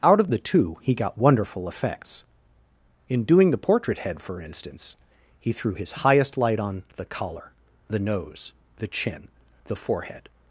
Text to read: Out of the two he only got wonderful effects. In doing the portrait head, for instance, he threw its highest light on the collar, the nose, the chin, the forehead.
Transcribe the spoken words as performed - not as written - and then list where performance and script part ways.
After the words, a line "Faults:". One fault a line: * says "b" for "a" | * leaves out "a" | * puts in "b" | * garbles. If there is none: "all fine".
Out of the two he got wonderful effects. In doing the portrait head, for instance, he threw his highest light on the collar, the nose, the chin, the forehead.
Faults:
* leaves out "only"
* says "his" for "its"